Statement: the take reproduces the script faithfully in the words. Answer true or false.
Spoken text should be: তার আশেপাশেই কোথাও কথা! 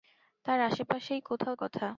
true